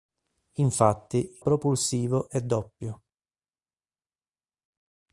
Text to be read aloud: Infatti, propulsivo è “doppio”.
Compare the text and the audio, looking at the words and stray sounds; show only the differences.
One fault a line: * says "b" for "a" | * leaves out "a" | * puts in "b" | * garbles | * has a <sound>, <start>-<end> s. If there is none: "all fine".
all fine